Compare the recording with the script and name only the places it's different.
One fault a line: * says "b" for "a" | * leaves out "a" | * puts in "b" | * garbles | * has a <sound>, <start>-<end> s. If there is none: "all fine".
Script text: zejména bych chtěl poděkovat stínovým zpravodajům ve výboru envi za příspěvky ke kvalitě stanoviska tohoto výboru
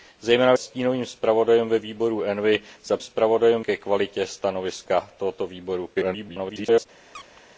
* leaves out "bych chtěl poděkovat"
* says "zpravodajům" for "příspěvky"
* garbles
* has a squeak, 7.1-7.4 s